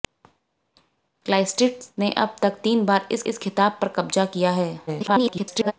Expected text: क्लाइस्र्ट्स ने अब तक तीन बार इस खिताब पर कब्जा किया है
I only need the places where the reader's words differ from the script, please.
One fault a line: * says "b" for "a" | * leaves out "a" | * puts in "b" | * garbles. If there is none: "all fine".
* puts in "इस"
* garbles